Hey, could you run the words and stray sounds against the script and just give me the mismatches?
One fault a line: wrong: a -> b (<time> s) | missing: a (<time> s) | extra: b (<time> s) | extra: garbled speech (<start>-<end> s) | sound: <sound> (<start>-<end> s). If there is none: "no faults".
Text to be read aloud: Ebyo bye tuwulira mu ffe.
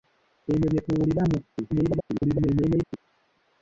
extra: garbled speech (1.7-3.0 s)